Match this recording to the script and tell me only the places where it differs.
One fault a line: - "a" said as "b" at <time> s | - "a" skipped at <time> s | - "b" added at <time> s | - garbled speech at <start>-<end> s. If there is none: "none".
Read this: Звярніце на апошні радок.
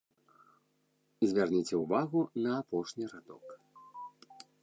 - "ўвагу" added at 1.8 s